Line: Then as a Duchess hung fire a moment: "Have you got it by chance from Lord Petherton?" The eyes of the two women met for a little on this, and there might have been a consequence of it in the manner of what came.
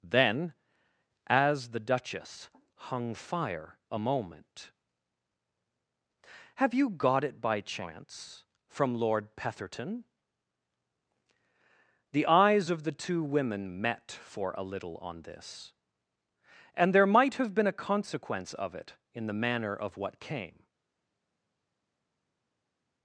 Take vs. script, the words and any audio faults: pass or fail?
fail